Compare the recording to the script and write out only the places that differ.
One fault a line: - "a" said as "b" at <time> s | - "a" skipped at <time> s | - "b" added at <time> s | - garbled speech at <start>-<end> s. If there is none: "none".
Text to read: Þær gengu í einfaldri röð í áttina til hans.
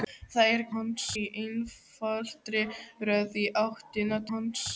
- "gengu" said as "hans" at 0.8 s
- "til" skipped at 4.2 s